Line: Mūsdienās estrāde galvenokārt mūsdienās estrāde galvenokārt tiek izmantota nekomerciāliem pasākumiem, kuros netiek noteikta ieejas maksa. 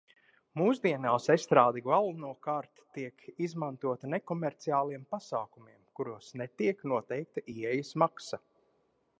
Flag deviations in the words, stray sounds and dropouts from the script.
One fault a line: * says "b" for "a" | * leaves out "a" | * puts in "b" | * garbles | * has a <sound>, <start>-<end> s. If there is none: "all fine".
* leaves out "mūsdienās estrāde galvenokārt"